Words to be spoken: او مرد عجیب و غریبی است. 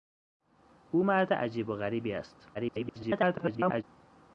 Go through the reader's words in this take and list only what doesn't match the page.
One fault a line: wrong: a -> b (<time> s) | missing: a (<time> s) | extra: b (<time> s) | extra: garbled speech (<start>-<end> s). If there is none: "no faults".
extra: garbled speech (2.5-3.8 s)